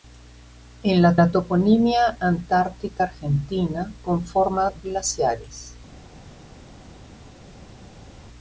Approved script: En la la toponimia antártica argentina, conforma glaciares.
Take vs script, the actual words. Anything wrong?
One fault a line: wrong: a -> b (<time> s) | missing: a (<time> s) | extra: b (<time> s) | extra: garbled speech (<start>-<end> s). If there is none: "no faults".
no faults